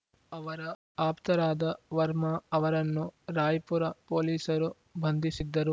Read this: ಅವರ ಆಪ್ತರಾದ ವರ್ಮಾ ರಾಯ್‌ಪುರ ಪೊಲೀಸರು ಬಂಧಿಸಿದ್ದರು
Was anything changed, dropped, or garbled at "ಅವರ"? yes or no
no